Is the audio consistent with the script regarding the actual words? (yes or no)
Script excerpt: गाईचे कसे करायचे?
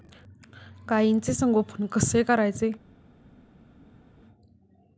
no